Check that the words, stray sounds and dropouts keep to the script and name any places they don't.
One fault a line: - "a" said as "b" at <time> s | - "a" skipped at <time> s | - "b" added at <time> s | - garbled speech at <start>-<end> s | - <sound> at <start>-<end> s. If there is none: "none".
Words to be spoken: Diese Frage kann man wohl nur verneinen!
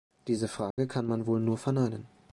- dropout at 0.7-0.8 s